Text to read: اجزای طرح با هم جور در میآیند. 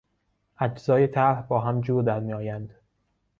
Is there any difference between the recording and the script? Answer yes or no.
no